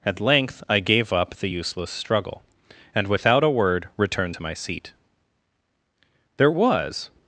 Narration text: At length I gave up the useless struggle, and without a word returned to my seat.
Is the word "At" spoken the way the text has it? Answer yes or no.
yes